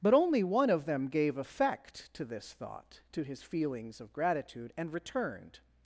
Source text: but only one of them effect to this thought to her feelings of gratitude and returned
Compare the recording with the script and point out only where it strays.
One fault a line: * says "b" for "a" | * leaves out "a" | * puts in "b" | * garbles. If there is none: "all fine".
* puts in "gave"
* says "his" for "her"